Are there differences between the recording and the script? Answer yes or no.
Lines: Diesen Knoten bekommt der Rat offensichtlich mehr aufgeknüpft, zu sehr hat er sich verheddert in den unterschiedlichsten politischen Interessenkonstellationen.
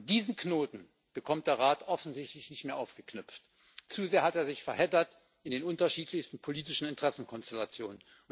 yes